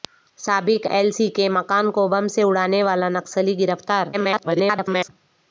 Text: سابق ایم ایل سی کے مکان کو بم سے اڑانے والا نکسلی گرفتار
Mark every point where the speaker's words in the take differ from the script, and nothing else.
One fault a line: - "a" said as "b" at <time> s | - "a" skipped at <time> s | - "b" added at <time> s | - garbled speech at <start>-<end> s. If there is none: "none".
- "ایم" skipped at 0.8 s
- garbled speech at 4.1-5.1 s